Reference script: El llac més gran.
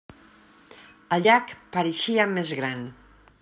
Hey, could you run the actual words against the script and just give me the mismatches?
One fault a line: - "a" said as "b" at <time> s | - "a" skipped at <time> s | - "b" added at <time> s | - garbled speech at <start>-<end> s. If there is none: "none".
- "pareixia" added at 1.8 s